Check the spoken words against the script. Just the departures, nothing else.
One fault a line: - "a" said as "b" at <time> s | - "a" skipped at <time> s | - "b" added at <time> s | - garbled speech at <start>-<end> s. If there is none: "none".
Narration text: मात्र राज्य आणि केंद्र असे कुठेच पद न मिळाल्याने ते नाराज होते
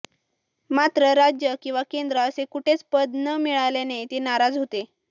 - "आणि" said as "किंवा" at 1.6 s